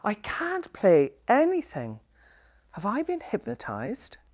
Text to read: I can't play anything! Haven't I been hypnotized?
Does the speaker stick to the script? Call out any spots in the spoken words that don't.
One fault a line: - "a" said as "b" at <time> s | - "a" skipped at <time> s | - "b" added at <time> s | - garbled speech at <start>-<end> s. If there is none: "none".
- "Haven't" said as "Have" at 2.7 s